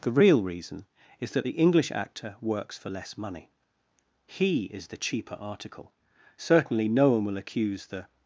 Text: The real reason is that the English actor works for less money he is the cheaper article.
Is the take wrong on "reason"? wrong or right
right